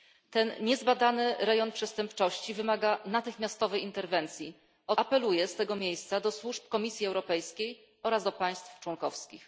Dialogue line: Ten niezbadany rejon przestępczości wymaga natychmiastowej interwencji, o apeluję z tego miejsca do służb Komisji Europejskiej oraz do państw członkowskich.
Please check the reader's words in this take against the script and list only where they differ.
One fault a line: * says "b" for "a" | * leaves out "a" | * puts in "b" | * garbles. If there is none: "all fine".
all fine